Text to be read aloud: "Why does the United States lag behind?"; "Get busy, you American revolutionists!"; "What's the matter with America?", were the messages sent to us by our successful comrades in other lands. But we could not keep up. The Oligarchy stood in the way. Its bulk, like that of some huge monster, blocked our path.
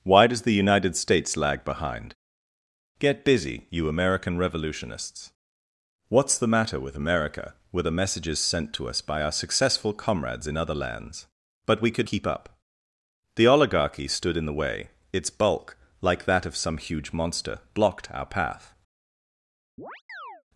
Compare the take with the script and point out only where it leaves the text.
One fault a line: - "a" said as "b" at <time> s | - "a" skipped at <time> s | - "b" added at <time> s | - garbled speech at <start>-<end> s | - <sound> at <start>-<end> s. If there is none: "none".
- "not" skipped at 12.1 s
- chirp at 19.8-20.4 s